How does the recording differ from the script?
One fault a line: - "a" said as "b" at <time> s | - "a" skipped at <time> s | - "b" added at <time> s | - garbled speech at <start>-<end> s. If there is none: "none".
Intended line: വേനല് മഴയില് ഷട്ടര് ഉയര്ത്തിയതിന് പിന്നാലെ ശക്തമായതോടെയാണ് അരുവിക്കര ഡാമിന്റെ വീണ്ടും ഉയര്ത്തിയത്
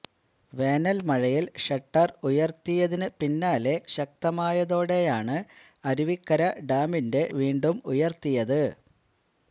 none